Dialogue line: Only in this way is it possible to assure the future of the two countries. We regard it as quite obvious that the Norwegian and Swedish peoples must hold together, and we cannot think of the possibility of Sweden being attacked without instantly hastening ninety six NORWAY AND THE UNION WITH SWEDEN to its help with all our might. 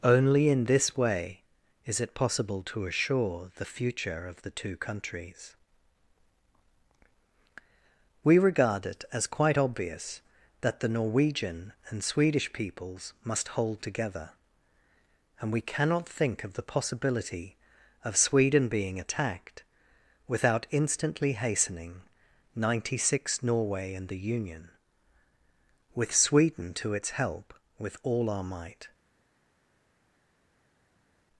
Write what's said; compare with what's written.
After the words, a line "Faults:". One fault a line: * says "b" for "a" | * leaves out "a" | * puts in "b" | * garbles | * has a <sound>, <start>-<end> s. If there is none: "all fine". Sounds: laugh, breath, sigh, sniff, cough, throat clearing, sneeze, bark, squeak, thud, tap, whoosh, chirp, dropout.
Only in this way is it possible to assure the future of the two countries. We regard it as quite obvious that the Norwegian and Swedish peoples must hold together, and we cannot think of the possibility of Sweden being attacked without instantly hastening ninety six NORWAY AND THE UNION WITH SWEDEN to its help with all our might.
Faults:
all fine